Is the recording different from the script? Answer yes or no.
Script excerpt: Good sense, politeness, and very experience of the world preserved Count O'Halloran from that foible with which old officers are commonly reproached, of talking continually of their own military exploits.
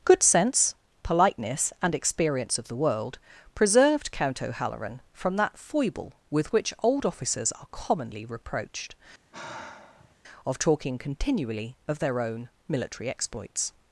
yes